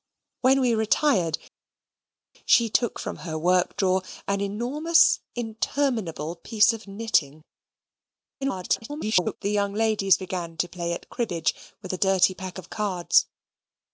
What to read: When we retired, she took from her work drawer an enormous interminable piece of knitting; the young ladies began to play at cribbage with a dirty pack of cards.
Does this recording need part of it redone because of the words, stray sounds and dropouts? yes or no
yes